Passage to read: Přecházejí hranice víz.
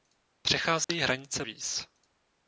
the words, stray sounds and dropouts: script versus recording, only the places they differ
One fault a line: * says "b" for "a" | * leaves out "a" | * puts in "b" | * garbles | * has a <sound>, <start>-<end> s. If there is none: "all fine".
* has a dropout, 0.8-0.9 s